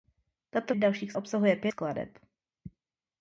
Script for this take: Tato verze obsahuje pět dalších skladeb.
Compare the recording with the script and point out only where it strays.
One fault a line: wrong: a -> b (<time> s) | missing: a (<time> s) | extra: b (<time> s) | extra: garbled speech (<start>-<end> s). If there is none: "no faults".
wrong: verze -> dalších (0.7 s)
missing: dalších (1.7 s)